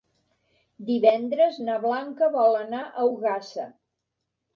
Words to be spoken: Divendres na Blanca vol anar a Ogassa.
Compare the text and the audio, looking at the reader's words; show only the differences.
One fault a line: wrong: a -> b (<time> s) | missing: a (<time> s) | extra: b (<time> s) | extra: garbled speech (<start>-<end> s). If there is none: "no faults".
no faults